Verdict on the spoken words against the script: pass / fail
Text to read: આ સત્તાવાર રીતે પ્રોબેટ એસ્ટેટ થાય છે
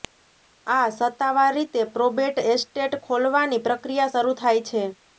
fail